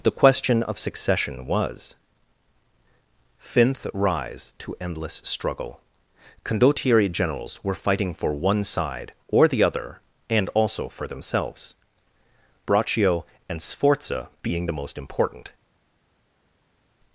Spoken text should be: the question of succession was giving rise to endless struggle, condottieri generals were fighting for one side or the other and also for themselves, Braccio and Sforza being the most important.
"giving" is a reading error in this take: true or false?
true